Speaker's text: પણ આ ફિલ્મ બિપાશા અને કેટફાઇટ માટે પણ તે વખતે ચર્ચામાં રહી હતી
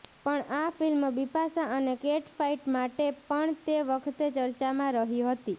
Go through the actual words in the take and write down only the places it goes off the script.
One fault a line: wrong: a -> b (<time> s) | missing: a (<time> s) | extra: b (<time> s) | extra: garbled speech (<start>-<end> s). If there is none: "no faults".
no faults